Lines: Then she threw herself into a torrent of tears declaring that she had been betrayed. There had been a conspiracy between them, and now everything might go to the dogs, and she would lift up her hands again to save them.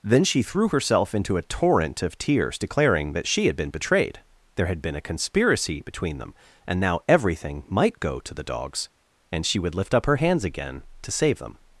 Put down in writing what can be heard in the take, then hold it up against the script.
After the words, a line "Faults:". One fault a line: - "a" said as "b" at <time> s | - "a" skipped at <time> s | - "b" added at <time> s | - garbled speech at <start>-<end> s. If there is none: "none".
Then she threw herself into a torrent of tears declaring that she had been betrayed. There had been a conspiracy between them, and now everything might go to the dogs, and she would lift up her hands again to save them.
Faults:
none